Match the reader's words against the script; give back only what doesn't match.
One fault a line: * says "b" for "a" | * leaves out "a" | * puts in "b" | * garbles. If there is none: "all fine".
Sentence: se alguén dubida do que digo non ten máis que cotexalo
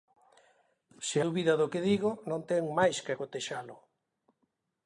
* leaves out "alguén"